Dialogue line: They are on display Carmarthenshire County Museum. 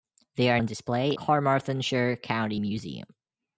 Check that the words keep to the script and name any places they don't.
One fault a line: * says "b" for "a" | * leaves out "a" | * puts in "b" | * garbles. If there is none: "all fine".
all fine